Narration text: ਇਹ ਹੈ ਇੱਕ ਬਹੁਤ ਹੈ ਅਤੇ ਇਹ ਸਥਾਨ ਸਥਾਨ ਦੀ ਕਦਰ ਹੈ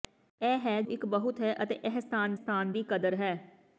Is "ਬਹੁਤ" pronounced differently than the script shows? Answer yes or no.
no